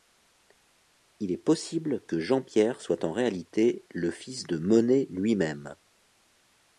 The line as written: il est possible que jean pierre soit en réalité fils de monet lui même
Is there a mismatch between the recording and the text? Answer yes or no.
yes